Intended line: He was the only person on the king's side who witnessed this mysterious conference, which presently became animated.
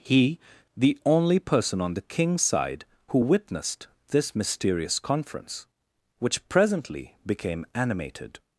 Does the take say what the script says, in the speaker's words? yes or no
no